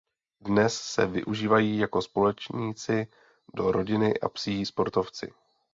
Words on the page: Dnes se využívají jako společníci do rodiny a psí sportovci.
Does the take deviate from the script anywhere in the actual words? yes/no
no